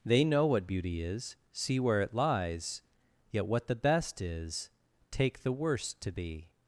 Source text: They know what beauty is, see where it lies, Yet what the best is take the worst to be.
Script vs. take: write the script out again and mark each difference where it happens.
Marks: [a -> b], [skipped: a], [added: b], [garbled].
They know what beauty is, see where it lies, Yet what the best is take the worst to be.